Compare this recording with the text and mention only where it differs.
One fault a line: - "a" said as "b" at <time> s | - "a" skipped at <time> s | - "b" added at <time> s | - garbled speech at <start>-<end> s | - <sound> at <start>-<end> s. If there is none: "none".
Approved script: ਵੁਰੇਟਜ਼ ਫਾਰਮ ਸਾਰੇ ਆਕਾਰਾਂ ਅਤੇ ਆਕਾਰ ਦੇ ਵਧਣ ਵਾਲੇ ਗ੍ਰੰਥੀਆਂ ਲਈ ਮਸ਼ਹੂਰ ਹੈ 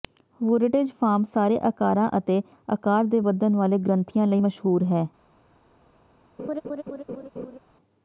- laugh at 6.4-7.6 s